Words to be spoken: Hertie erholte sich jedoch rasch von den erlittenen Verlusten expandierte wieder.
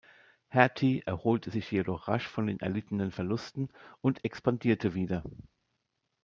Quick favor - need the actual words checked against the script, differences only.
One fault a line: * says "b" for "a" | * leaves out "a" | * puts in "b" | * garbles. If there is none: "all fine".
* puts in "und"